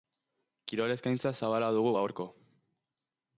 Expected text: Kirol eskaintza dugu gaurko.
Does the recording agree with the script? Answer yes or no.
no